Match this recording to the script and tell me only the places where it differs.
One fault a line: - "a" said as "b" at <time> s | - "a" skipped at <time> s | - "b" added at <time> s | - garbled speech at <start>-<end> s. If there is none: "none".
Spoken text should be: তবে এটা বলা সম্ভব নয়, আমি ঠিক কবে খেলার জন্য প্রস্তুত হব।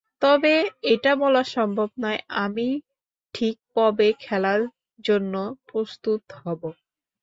none